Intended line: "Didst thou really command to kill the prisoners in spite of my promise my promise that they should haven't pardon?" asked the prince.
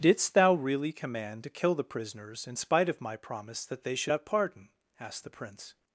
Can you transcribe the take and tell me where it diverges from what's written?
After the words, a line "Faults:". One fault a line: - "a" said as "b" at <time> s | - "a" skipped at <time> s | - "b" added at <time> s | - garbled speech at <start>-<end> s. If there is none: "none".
"Didst thou really command to kill the prisoners in spite of my promise that they should have pardon?" asked the prince.
Faults:
- "my promise" skipped at 3.7 s
- "haven't" said as "have" at 4.1 s